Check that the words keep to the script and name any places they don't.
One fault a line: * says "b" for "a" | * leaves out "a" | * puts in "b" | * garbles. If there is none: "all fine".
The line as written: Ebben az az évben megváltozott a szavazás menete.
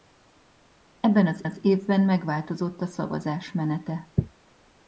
all fine